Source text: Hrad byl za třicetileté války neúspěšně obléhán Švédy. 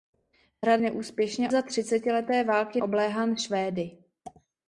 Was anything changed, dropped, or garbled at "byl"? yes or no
yes